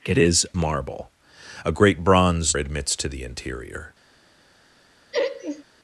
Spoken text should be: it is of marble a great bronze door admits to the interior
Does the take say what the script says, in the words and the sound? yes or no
no